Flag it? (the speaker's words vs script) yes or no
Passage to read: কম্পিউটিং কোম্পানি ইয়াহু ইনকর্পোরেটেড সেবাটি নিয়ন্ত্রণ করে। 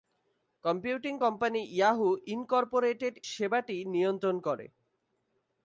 no